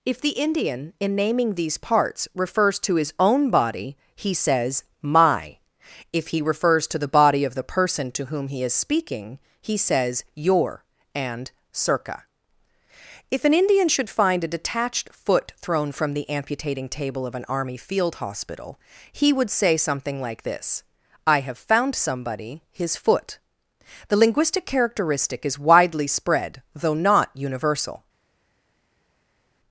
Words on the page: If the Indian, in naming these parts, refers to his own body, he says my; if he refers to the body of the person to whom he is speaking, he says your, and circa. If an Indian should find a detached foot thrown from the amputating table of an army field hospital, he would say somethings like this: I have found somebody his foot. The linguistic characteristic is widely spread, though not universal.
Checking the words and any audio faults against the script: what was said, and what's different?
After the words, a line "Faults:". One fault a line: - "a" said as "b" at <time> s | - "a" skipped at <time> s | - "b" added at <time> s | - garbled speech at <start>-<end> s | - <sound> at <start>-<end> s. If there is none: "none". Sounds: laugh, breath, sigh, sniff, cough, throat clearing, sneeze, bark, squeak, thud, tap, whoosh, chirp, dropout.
If the Indian, in naming these parts, refers to his own body, he says my; if he refers to the body of the person to whom he is speaking, he says your, and circa. If an Indian should find a detached foot thrown from the amputating table of an army field hospital, he would say something like this: I have found somebody his foot. The linguistic characteristic is widely spread, though not universal.
Faults:
- "somethings" said as "something" at 19.8 s